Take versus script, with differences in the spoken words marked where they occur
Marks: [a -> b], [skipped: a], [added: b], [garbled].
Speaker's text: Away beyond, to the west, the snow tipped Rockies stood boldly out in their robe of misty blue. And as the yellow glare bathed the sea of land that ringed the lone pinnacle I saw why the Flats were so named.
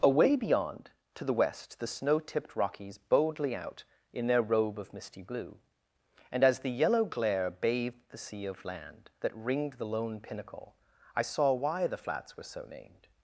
Away beyond, to the west, the snow tipped Rockies [skipped: stood] boldly out in their robe of misty blue. And as the yellow glare bathed the sea of land that ringed the lone pinnacle I saw why the Flats were so named.